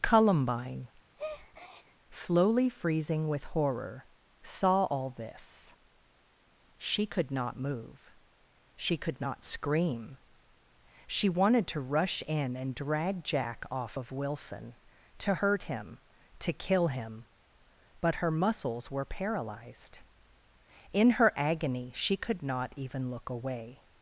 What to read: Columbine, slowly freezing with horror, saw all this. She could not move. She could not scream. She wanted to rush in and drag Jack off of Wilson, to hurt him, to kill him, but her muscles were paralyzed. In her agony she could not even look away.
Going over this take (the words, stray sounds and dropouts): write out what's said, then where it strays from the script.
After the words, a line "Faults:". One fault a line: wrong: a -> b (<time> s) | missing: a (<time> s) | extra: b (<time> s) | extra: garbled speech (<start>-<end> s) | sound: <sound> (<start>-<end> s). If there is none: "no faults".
Columbine, slowly freezing with horror, saw all this. She could not move. She could not scream. She wanted to rush in and drag Jack off of Wilson, to hurt him, to kill him, but her muscles were paralyzed. In her agony she could not even look away.
Faults:
sound: breath (1.2-2.0 s)